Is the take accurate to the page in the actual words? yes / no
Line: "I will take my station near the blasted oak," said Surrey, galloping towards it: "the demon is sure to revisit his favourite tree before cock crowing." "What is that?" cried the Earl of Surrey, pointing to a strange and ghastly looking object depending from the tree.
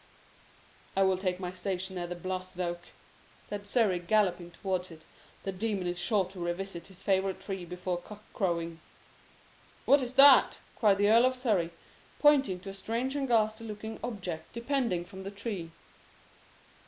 yes